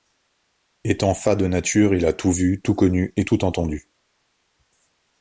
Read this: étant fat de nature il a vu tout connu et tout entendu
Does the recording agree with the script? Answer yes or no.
no